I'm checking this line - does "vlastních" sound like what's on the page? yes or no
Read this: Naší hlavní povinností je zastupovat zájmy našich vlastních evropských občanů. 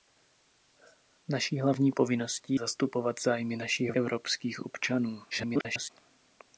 no